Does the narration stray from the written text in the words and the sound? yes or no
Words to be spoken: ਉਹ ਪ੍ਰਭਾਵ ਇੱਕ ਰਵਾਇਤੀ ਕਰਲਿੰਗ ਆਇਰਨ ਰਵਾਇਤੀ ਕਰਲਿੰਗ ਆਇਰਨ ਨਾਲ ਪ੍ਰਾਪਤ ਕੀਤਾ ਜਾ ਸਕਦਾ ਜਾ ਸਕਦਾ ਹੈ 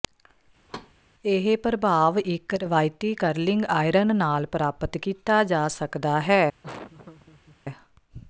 yes